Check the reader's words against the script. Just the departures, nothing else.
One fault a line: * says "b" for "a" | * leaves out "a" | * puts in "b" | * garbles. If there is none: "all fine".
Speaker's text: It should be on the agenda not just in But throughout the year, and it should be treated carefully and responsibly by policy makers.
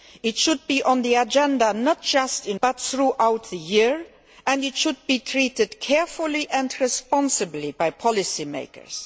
all fine